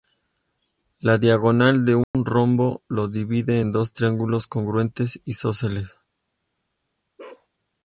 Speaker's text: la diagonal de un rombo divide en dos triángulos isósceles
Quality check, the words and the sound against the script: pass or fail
fail